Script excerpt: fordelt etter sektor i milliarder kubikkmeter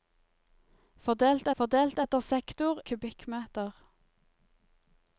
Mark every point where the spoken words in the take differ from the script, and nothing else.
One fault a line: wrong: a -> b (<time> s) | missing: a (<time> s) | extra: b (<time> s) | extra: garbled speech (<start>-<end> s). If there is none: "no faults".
extra: fordelt (1.6 s)
missing: i milliarder (2.8 s)